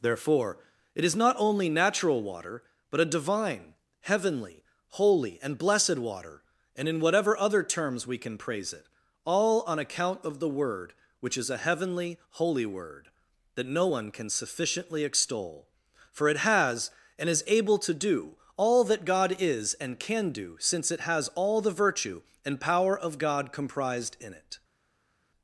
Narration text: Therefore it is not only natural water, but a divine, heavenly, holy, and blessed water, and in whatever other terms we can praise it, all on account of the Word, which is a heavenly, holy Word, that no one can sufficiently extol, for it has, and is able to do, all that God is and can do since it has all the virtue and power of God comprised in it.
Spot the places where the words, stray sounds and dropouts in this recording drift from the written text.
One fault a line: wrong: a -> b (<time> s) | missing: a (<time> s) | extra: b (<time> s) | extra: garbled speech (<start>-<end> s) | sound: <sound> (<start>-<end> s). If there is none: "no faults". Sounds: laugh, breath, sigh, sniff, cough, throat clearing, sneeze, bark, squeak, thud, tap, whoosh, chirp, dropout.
no faults